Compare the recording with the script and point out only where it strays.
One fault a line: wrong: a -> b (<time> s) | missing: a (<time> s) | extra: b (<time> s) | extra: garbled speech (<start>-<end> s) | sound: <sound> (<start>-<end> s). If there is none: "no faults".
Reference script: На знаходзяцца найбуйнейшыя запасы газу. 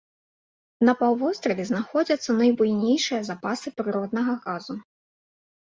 extra: паўвостраве (1.0 s)
extra: прыроднага (3.8 s)